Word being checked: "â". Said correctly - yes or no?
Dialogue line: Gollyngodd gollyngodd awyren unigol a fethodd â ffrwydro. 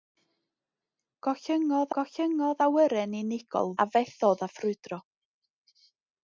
yes